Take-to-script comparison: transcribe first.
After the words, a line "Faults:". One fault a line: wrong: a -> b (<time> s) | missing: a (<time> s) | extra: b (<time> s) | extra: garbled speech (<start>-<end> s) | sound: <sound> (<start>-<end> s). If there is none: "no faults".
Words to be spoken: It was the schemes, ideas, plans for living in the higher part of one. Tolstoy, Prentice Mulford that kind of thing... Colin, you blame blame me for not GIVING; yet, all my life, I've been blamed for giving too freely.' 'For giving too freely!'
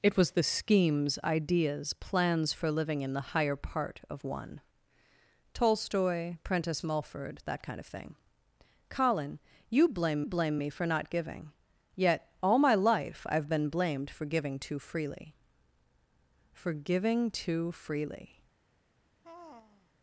It was the schemes, ideas, plans for living in the higher part of one. Tolstoy, Prentice Mulford that kind of thing... Colin, you blame blame me for not GIVING; yet, all my life, I've been blamed for giving too freely.' 'For giving too freely!'
Faults:
sound: sigh (19.2-19.9 s)